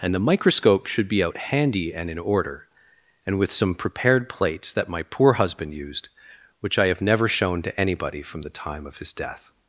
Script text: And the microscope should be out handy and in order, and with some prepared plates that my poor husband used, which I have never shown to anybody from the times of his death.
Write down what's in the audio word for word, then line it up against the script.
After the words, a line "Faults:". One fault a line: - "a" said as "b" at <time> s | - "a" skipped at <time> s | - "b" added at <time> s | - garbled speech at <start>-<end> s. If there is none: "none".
And the microscope should be out handy and in order, and with some prepared plates that my poor husband used, which I have never shown to anybody from the time of his death.
Faults:
- "times" said as "time" at 8.5 s